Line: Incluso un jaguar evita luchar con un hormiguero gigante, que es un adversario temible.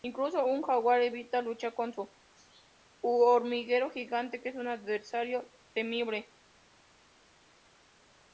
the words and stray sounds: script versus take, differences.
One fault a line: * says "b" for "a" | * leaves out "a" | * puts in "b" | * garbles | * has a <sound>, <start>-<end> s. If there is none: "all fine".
all fine